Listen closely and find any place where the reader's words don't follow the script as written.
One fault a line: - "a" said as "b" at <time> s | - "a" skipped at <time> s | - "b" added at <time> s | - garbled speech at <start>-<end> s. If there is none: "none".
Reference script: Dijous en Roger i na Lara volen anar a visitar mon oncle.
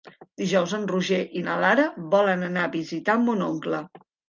none